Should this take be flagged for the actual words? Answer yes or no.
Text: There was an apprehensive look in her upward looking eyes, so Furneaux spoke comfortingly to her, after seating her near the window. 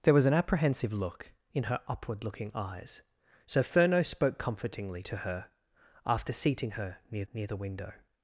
yes